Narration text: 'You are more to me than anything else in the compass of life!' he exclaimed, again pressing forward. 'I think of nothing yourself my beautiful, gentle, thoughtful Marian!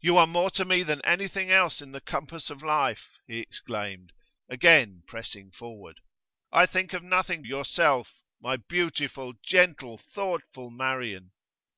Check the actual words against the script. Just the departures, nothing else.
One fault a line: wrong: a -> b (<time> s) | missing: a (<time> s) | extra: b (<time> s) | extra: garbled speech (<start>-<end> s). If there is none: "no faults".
no faults